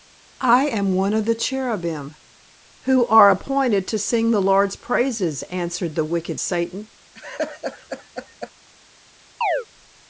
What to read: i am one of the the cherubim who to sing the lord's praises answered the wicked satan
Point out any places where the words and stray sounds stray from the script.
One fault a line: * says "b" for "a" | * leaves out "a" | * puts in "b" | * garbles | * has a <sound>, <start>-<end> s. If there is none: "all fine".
* leaves out "the"
* puts in "are appointed"
* has a laugh, 7.1-8.5 s
* has a chirp, 9.4-9.7 s